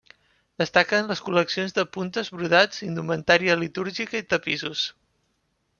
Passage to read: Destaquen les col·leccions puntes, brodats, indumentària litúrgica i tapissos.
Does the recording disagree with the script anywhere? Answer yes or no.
yes